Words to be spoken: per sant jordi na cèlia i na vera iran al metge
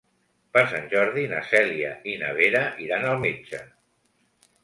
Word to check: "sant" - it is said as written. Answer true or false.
true